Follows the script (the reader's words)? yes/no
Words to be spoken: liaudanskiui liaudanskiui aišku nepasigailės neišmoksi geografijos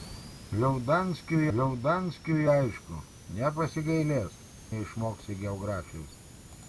yes